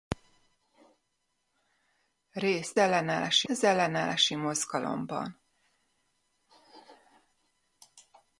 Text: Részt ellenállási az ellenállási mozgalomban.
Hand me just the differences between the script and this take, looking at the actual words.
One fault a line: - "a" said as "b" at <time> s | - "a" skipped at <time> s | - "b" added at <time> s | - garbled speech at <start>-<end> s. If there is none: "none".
none